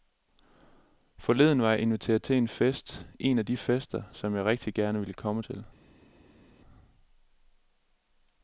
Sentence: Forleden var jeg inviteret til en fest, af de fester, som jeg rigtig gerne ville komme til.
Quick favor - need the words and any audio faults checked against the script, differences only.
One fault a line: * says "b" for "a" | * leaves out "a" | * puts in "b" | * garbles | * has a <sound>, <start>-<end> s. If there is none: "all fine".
* puts in "en"